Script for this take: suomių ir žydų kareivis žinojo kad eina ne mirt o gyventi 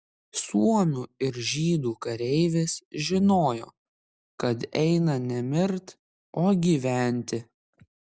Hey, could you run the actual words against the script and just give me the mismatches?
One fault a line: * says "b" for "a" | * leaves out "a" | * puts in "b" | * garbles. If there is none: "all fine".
all fine